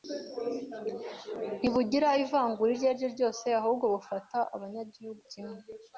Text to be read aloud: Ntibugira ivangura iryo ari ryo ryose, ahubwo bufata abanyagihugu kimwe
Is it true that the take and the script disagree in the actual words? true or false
false